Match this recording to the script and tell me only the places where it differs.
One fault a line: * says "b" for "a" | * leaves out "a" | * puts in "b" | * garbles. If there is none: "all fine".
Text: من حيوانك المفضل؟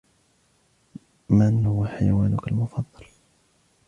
* puts in "هو"